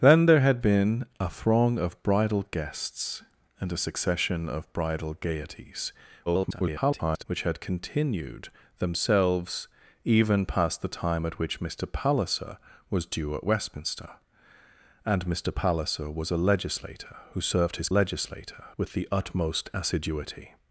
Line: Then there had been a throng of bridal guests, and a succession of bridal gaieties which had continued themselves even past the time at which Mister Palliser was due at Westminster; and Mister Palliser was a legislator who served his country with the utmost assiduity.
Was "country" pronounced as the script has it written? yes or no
no